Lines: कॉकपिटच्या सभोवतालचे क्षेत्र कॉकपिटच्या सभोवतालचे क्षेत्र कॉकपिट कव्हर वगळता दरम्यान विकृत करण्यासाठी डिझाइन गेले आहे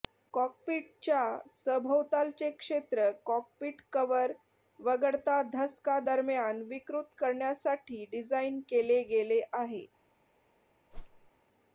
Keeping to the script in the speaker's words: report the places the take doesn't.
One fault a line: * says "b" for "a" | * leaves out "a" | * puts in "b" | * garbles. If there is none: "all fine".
* leaves out "कॉकपिटच्या सभोवतालचे क्षेत्र"
* puts in "धसका"
* puts in "केले"